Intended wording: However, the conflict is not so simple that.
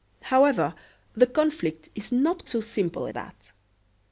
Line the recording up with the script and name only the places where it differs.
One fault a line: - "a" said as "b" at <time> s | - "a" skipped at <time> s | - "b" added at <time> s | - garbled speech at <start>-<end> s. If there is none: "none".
none